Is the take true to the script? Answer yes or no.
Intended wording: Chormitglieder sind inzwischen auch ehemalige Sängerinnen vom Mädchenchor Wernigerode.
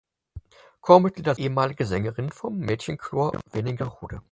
no